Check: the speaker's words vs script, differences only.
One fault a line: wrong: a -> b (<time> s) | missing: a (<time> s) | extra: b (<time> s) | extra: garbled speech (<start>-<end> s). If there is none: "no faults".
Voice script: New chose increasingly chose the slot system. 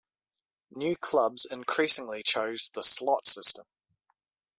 wrong: chose -> clubs (0.9 s)